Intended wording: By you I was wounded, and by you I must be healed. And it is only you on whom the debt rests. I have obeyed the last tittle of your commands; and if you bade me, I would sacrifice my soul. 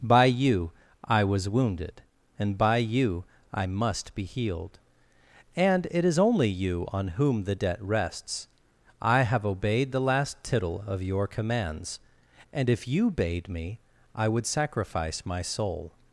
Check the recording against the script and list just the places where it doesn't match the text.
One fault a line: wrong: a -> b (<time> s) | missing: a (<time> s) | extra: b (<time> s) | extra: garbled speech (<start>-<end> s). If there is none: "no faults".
no faults